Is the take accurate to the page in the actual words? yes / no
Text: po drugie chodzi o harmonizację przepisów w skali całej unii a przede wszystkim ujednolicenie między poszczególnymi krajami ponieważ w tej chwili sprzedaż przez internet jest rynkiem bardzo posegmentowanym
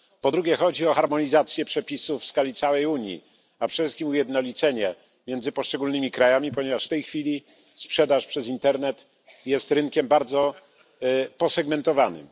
yes